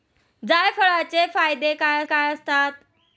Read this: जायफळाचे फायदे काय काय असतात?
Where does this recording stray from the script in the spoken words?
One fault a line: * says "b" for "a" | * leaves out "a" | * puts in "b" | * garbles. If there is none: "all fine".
all fine